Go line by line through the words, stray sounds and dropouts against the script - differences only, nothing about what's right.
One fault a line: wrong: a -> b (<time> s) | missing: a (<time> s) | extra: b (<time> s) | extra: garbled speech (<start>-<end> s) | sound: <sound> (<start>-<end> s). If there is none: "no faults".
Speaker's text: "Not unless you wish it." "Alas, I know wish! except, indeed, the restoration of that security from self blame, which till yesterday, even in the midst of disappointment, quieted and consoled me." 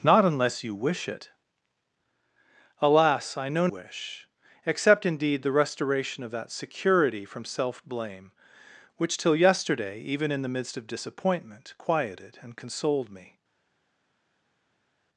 no faults